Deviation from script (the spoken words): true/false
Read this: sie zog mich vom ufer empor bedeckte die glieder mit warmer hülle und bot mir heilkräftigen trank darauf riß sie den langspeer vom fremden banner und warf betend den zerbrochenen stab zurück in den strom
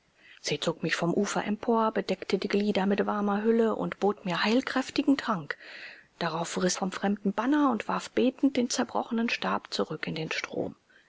true